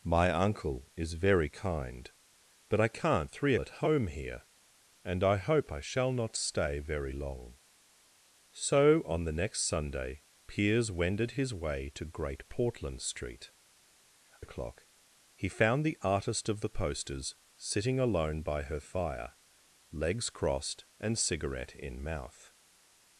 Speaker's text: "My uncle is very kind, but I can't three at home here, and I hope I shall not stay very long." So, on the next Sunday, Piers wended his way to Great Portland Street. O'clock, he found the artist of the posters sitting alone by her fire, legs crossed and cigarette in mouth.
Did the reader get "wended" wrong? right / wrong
right